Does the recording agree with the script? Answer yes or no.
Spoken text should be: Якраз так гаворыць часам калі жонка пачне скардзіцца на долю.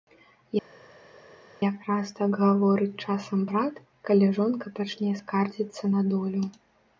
no